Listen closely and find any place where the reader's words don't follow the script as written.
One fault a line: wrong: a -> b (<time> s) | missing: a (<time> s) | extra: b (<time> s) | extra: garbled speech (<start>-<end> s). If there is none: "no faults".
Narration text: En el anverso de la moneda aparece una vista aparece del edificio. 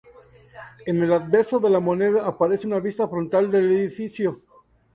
wrong: aparece -> frontal (3.1 s)